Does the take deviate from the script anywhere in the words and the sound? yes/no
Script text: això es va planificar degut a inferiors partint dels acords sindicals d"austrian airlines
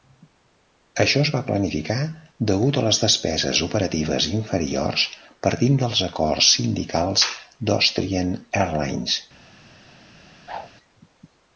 yes